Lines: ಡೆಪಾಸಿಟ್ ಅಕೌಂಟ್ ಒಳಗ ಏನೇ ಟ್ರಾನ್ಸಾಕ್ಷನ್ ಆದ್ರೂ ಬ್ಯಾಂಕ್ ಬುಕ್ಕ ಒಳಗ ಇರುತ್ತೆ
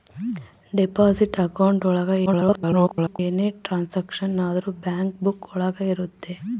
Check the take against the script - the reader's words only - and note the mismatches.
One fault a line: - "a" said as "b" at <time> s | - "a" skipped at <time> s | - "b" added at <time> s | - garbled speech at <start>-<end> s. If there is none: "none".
- garbled speech at 2.3-3.2 s